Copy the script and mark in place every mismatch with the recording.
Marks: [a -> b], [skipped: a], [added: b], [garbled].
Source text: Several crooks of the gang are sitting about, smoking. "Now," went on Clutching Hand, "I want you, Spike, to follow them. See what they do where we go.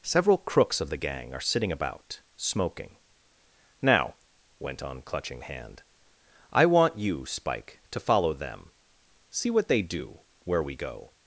Several crooks of the gang are sitting about, smoking. "Now," went on Clutching Hand, "I want you, Spike, to follow them. See what they do where we go.